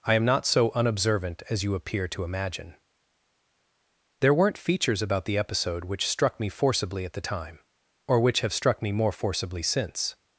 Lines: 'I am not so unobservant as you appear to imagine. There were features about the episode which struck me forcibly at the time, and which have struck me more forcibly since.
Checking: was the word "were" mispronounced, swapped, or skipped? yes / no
yes